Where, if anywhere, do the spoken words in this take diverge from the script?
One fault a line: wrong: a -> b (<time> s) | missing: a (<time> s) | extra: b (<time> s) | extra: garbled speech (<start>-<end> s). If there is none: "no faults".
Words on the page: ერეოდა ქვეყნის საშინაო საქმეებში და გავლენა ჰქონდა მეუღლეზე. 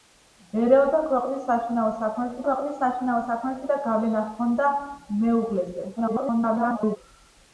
extra: ქვეყნის საშინაო საქმეებში (2.4 s)
extra: garbled speech (6.0-7.0 s)